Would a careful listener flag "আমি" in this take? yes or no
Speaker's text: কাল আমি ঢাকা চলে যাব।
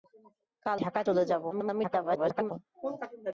yes